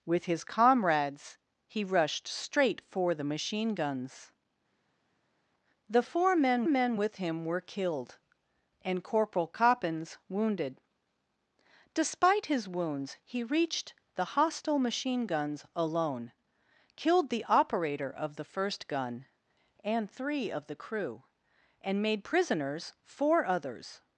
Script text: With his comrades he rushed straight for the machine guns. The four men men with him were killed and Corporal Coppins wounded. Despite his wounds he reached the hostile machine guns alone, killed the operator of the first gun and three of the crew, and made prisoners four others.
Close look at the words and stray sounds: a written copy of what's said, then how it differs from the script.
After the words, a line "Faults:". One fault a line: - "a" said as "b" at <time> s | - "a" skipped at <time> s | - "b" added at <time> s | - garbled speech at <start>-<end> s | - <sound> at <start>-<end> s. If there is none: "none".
With his comrades he rushed straight for the machine guns. The four men men with him were killed and Corporal Coppins wounded. Despite his wounds he reached the hostile machine guns alone, killed the operator of the first gun and three of the crew, and made prisoners four others.
Faults:
none